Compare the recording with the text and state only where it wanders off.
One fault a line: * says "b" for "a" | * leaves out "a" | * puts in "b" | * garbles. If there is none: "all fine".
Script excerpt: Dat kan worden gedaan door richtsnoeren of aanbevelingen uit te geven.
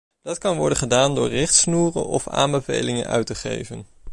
all fine